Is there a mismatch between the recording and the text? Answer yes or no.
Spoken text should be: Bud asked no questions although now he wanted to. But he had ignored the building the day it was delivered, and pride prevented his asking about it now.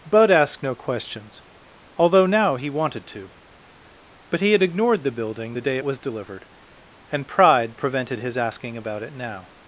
yes